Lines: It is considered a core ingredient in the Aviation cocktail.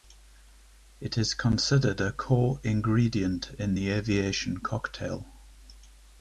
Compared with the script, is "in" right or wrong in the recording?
right